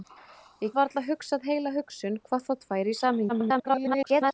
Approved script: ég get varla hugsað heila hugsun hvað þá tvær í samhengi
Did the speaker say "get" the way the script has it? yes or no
no